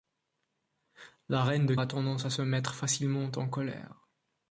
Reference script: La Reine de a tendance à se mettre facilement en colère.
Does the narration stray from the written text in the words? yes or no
no